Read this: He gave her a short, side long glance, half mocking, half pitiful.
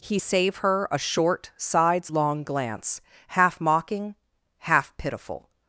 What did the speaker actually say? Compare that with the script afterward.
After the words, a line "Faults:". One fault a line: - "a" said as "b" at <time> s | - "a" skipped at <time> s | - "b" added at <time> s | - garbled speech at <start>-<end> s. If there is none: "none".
He save her a short, sides long glance, half mocking, half pitiful.
Faults:
- "gave" said as "save" at 0.2 s
- "side" said as "sides" at 1.6 s